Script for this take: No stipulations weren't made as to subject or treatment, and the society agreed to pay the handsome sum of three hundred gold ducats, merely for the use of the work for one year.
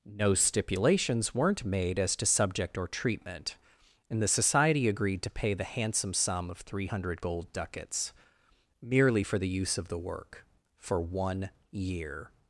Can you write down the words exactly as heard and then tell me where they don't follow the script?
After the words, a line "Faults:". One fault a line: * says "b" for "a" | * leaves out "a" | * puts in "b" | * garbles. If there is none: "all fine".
No stipulations weren't made as to subject or treatment, and the society agreed to pay the handsome sum of three hundred gold ducats, merely for the use of the work for one year.
Faults:
all fine